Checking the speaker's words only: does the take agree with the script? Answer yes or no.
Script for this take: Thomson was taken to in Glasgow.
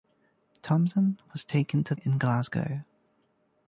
yes